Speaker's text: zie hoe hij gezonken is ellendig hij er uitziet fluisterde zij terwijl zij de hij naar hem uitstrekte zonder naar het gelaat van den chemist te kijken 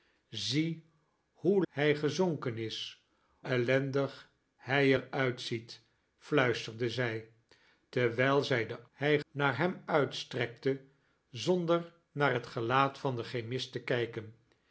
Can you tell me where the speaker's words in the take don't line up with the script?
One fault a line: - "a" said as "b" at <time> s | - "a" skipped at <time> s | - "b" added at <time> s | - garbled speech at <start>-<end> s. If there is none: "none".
none